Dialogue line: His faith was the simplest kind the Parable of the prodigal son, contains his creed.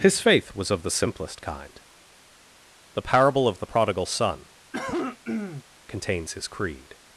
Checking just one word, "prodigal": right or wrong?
right